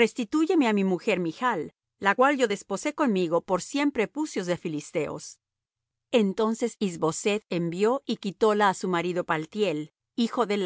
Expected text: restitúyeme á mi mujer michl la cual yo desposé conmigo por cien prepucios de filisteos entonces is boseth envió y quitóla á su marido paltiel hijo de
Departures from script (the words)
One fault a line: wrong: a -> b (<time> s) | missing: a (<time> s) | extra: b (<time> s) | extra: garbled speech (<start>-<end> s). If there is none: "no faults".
no faults